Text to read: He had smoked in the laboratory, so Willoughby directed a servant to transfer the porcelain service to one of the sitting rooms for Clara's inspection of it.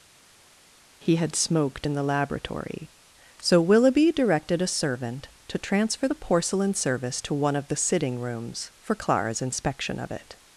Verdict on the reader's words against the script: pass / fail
pass